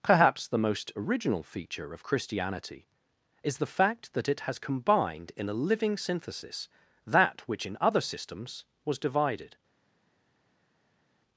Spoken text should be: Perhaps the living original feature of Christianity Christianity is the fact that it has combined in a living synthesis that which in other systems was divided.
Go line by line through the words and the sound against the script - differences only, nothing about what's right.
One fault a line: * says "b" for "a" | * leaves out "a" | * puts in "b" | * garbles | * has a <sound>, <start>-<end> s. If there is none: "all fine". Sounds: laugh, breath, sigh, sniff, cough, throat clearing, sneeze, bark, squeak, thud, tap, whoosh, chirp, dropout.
* says "most" for "living"
* leaves out "Christianity"